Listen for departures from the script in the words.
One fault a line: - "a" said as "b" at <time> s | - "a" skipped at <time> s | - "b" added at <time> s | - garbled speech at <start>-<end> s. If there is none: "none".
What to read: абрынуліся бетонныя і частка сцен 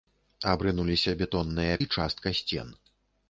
none